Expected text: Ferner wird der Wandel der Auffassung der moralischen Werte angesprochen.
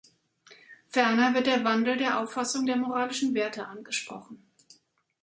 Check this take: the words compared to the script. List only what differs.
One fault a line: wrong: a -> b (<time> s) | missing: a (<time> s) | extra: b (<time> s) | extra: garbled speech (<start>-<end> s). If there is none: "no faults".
no faults